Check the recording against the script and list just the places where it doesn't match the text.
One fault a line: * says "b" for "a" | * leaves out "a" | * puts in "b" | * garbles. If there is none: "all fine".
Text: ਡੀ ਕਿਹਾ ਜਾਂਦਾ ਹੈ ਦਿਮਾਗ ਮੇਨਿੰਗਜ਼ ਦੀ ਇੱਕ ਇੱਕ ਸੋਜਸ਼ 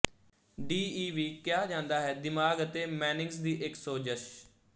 * puts in "ਈ ਵੀ"
* puts in "ਅਤੇ"
* leaves out "ਇੱਕ"